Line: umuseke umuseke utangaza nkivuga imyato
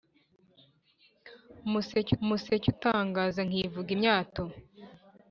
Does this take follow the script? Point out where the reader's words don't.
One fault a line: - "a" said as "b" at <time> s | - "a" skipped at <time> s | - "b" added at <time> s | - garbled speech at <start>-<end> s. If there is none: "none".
none